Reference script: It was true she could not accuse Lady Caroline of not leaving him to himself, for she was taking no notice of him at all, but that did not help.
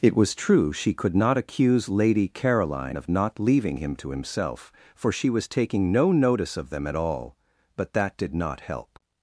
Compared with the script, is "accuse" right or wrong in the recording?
right